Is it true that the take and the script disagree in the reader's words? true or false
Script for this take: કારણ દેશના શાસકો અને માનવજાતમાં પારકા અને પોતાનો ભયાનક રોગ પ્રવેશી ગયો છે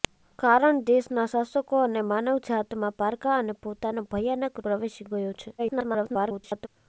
true